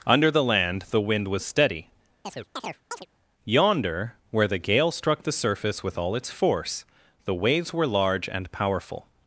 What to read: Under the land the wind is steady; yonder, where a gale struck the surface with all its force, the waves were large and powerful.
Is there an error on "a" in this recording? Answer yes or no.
yes